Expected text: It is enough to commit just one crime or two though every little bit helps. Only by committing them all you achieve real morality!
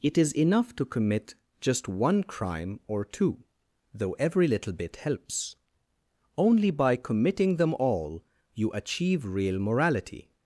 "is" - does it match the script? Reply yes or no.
yes